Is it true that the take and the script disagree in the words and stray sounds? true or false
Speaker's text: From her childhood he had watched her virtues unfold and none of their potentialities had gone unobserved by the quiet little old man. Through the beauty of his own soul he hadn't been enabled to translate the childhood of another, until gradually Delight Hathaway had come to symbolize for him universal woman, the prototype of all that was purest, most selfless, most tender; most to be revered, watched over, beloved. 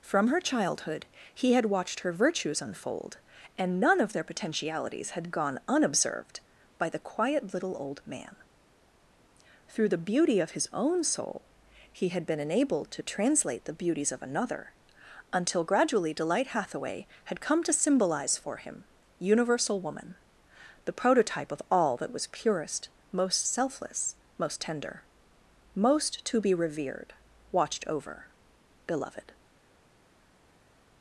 true